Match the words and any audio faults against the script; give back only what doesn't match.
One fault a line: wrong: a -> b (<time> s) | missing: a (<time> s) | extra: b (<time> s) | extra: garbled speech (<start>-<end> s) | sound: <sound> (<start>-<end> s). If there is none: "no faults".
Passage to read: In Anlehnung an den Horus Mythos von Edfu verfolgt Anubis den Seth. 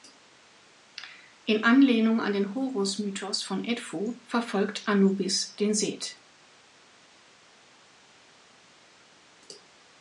no faults